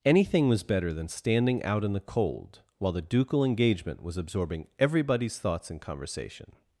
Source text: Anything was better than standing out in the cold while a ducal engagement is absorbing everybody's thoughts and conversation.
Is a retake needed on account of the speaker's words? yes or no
yes